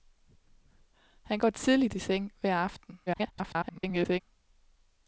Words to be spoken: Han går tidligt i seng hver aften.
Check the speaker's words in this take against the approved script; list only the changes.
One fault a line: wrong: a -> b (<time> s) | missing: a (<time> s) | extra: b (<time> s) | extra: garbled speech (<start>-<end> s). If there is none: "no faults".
extra: garbled speech (3.1-4.2 s)